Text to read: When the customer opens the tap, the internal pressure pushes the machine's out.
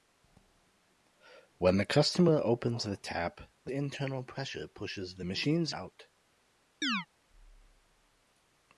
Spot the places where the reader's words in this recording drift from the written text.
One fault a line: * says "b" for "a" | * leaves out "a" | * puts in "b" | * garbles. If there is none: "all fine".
all fine